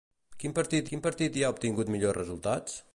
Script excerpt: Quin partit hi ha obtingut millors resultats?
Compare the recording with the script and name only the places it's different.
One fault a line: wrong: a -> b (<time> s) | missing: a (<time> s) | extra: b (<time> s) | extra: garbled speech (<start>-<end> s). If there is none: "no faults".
extra: quin partit (0.9 s)